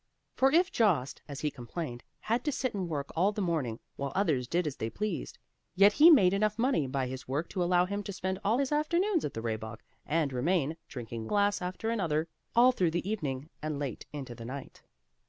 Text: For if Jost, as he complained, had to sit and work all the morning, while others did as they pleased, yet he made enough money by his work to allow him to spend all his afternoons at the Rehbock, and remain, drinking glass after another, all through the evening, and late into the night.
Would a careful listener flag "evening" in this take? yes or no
no